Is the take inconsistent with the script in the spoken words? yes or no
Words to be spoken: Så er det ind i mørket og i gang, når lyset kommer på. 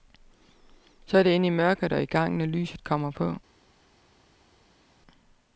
no